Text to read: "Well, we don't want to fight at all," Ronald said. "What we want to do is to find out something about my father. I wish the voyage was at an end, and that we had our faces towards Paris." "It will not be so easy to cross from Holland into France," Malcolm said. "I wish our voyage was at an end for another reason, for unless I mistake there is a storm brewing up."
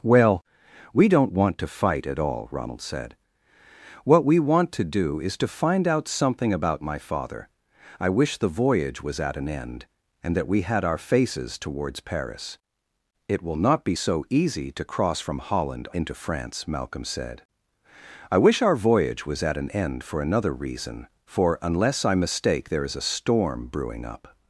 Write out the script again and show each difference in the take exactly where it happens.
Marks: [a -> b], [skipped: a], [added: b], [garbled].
"Well, we don't want to fight at all," Ronald said. "What we want to do is to find out something about my father. I wish the voyage was at an end, and that we had our faces towards Paris." "It will not be so easy to cross from Holland into France," Malcolm said. "I wish our voyage was at an end for another reason, for unless I mistake there is a storm brewing up."